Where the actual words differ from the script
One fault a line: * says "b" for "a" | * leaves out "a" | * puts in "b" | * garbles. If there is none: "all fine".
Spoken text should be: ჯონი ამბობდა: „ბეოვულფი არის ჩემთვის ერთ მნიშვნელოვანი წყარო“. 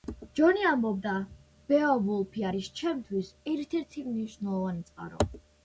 * puts in "ერთი"